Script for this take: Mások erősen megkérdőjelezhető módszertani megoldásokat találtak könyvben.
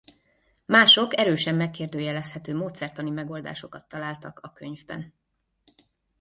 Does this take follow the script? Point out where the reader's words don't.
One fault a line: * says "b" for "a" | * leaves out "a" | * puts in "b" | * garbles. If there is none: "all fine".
* puts in "a"